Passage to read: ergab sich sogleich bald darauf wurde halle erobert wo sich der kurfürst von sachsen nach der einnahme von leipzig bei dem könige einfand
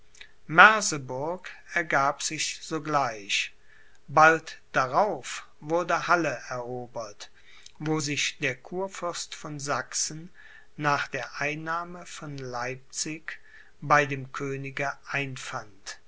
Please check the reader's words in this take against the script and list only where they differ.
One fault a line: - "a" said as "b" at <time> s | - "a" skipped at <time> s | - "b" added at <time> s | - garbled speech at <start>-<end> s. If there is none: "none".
none